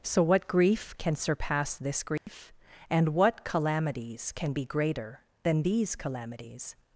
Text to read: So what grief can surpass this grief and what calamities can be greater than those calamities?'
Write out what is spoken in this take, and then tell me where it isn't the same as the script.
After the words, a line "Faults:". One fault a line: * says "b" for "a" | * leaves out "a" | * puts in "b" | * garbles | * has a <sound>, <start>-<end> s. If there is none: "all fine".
So what grief can surpass this grief and what calamities can be greater than these calamities?'
Faults:
* has a dropout, 2.2-2.3 s
* says "these" for "those"